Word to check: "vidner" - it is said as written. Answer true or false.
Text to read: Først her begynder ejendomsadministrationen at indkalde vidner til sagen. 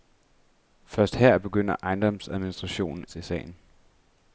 false